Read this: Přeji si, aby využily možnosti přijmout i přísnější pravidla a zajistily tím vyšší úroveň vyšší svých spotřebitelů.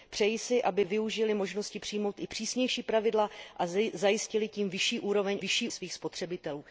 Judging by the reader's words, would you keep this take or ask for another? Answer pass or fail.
pass